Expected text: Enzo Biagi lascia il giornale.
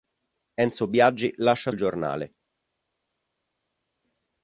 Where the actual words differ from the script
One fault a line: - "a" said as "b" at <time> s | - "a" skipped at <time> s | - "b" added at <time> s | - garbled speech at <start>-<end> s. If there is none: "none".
none